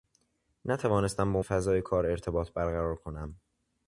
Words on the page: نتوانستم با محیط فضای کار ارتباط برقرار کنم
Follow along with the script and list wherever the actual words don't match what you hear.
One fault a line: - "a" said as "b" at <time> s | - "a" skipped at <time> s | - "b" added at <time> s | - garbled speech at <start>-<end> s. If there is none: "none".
- "محیط" skipped at 1.4 s